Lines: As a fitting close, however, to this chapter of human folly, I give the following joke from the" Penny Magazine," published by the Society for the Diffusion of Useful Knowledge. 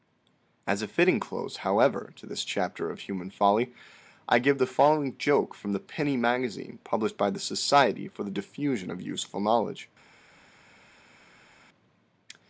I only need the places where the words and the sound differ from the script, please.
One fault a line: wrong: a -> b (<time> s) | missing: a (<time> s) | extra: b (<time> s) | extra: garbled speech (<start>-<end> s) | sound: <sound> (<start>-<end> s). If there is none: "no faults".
no faults